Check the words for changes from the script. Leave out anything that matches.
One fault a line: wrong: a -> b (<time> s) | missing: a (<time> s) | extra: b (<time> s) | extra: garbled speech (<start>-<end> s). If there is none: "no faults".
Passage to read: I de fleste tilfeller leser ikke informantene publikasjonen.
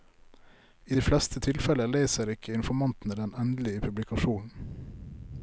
extra: den endelige (3.2 s)